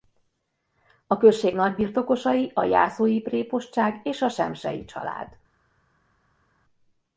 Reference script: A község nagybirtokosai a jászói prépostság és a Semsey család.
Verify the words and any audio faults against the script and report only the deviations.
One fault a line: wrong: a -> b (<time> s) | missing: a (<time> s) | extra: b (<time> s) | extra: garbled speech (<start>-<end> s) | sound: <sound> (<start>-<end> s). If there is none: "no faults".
no faults